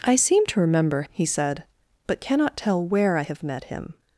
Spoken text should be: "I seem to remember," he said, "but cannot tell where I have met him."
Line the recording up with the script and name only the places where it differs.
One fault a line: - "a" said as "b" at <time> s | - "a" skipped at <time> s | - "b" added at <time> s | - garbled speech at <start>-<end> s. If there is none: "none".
none